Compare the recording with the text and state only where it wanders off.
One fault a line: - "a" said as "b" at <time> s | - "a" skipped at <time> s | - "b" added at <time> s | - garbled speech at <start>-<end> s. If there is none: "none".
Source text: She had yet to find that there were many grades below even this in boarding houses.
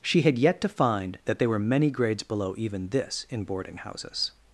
- "there" said as "they" at 1.4 s